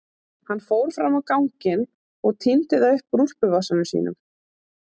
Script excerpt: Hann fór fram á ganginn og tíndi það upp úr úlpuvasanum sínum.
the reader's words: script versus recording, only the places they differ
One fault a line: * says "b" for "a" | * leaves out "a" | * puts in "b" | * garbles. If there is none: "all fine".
all fine